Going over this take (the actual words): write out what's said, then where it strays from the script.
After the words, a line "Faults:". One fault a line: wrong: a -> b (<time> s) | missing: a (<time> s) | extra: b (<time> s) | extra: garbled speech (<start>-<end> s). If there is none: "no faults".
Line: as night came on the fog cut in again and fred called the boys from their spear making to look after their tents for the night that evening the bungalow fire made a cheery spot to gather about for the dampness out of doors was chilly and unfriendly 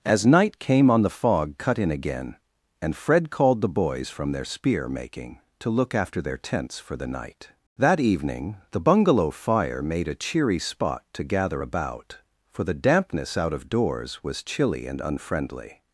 as night came on the fog cut in again and fred called the boys from their spear making to look after their tents for the night that evening the bungalow fire made a cheery spot to gather about for the dampness out of doors was chilly and unfriendly
Faults:
no faults